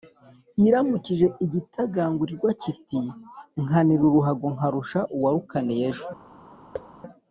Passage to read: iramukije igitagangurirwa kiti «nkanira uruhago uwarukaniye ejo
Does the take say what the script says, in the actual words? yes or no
no